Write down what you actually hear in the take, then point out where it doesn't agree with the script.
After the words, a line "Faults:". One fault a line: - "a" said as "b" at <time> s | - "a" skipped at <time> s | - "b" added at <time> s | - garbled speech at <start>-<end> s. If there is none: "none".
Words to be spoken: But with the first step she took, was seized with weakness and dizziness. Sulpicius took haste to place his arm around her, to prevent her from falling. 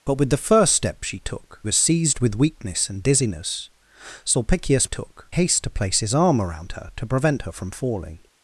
But with the first step she took, was seized with weakness and dizziness. Sulpicius took haste to place his arm around her, to prevent her from falling.
Faults:
none